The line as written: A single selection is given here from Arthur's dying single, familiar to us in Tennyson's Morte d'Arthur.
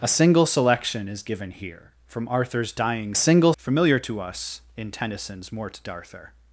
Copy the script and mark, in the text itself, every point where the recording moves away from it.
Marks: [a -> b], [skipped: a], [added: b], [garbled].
A single selection is given here from Arthur's dying single, familiar to us in Tennyson's Morte d'Arthur.